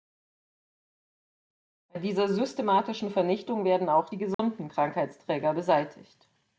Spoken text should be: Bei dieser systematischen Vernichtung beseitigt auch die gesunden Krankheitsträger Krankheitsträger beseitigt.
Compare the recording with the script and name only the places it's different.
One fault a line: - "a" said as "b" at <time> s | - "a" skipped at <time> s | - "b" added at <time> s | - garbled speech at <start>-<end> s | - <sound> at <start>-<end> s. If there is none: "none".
- "beseitigt" said as "werden" at 3.6 s
- dropout at 4.3-4.4 s
- "Krankheitsträger" skipped at 5.5 s